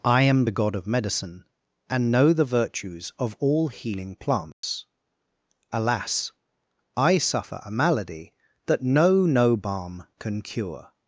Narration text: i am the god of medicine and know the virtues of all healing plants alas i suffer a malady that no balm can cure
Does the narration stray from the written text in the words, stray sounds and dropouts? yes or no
yes